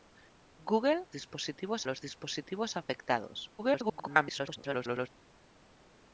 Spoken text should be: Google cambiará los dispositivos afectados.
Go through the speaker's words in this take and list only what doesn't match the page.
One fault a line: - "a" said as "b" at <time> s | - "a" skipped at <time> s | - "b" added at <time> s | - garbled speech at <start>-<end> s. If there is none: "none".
- "cambiará" said as "dispositivos" at 1.1 s
- garbled speech at 3.6-5.1 s